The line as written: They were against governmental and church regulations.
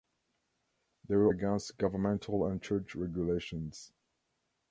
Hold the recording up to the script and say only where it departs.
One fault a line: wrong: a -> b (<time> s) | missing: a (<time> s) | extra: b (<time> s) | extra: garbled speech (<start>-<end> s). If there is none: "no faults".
no faults